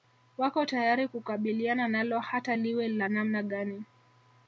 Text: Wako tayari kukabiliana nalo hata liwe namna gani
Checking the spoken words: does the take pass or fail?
fail